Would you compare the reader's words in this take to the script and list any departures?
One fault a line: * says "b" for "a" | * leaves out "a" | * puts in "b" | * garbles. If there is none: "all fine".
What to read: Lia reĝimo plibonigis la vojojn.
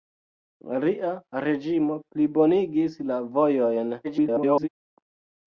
* garbles